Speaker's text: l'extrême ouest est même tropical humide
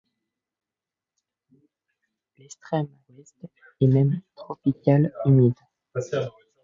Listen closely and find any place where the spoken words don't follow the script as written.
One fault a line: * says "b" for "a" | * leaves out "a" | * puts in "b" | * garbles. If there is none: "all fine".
all fine